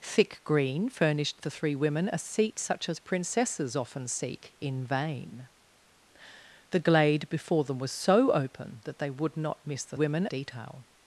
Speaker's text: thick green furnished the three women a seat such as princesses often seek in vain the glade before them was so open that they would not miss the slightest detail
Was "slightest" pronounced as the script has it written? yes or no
no